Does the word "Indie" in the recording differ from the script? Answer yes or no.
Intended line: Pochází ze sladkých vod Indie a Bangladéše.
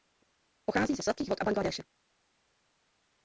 yes